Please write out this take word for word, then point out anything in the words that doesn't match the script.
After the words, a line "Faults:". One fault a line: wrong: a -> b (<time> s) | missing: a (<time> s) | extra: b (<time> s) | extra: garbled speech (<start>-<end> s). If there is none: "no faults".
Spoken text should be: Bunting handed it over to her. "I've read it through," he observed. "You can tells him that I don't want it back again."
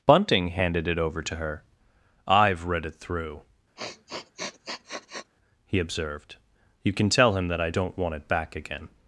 Bunting handed it over to her. "I've read it through," he observed. "You can tell him that I don't want it back again."
Faults:
wrong: tells -> tell (7.1 s)